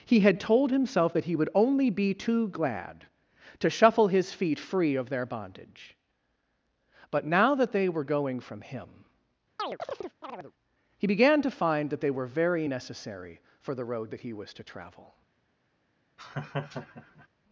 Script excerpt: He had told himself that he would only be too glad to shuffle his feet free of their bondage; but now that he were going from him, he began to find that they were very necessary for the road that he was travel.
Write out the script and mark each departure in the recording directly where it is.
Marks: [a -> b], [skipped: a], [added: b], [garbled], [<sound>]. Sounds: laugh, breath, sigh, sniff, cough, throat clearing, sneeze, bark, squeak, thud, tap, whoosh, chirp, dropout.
He had told himself that he would only be too glad to shuffle his feet free of their bondage; but now that [he -> they] were going from him, [chirp] he began to find that they were very necessary for the road that he was [added: to] travel. [laugh]